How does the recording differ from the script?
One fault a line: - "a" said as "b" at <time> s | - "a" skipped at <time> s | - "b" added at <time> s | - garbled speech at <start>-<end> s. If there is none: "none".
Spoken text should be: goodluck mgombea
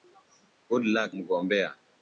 none